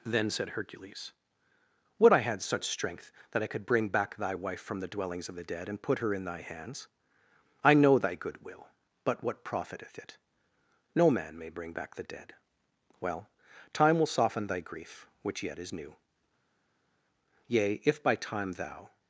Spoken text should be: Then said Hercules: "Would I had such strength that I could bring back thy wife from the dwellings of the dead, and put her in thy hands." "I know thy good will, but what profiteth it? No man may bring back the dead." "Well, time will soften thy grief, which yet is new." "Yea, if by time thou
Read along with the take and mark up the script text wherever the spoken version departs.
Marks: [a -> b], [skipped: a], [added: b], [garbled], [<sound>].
Then said Hercules: "Would I had such strength that I could bring back thy wife from the dwellings of the dead, and put her in thy hands." "I know thy good will, but what profiteth it? No man may bring back the dead." "Well, time will soften thy grief, which yet is new." "Yea, if by time thou